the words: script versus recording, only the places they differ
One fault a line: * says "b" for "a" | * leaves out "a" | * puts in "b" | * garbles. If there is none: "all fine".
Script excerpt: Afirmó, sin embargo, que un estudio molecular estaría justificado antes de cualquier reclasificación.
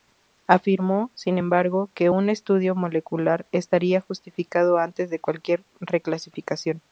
all fine